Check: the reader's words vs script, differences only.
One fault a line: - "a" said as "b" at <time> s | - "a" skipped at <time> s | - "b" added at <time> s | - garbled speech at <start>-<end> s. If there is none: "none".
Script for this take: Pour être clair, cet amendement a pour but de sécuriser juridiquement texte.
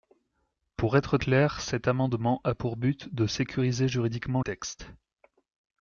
none